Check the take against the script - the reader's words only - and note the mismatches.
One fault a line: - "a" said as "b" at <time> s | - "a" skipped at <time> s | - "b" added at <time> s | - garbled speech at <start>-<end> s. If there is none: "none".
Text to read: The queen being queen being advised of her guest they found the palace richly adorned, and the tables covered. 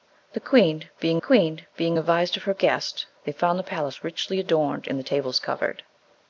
none